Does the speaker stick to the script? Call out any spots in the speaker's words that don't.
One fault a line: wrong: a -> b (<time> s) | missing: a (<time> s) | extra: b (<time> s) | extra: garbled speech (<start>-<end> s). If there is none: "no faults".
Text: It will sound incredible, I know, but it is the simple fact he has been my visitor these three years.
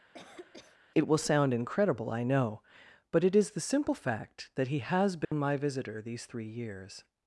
extra: that (4.5 s)